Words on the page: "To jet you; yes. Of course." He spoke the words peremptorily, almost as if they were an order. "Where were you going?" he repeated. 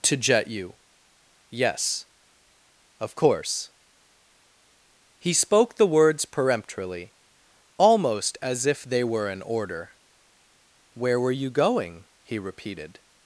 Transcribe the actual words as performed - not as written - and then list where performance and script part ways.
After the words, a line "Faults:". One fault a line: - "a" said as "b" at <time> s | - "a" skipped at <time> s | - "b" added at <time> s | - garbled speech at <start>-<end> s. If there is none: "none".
"To jet you; yes. Of course." He spoke the words peremptorily, almost as if they were an order. "Where were you going?" he repeated.
Faults:
none